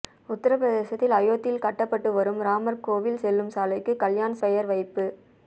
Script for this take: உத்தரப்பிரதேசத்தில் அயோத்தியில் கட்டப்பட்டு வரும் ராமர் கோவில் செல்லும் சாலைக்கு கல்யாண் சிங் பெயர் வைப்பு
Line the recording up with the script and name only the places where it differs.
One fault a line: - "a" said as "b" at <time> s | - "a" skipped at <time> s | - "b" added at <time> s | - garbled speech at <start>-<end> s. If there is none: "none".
- "சிங்" skipped at 4.4 s